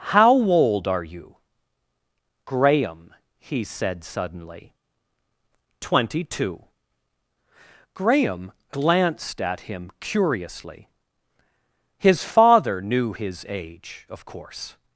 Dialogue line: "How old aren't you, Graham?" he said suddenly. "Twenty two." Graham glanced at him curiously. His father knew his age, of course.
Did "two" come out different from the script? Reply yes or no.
no